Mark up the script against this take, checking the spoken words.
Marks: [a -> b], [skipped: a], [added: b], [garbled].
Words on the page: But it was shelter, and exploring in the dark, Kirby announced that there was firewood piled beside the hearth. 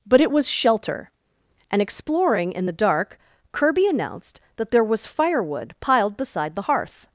But it was shelter, and exploring in the dark, Kirby announced that there was firewood piled beside the hearth.